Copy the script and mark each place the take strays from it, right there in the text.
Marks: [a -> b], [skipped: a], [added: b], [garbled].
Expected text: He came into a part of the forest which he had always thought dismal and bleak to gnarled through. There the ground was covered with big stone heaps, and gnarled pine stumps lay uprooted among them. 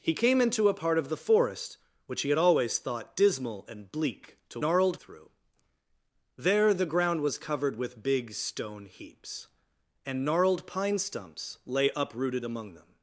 He came into a part of the forest which he had always thought dismal and bleak to gnarled through. There the ground was covered with big stone heaps, and gnarled pine stumps lay uprooted among them.